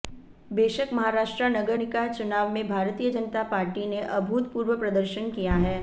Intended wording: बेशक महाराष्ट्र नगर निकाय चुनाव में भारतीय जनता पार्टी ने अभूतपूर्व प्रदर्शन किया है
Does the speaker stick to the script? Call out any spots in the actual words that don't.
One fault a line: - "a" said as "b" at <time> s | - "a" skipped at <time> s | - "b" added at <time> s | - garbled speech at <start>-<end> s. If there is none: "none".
none